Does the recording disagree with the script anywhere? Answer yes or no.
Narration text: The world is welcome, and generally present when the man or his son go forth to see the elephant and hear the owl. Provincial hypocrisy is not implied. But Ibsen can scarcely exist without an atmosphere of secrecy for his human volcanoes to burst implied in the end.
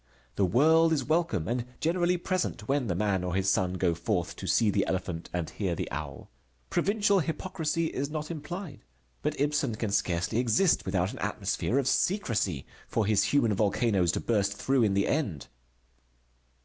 yes